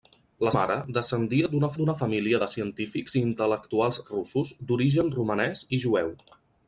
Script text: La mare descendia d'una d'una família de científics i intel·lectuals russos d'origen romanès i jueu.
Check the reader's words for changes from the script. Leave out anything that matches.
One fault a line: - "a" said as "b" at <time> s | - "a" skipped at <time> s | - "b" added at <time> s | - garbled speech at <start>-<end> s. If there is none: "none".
none